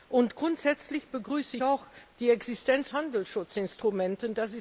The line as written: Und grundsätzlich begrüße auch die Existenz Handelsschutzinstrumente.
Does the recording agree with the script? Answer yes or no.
yes